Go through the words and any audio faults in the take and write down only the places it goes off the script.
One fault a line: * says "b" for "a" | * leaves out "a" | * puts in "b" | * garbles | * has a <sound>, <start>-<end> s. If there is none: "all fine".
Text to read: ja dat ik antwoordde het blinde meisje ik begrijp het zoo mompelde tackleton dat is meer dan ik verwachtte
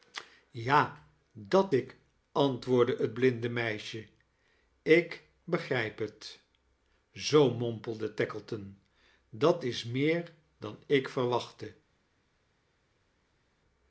all fine